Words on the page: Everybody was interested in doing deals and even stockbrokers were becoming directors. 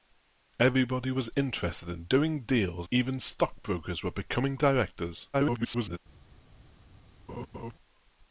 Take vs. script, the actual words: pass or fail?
fail